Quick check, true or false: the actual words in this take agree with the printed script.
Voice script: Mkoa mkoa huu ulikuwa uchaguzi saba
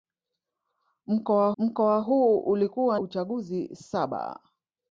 true